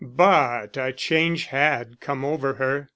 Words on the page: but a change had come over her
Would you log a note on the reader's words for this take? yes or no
no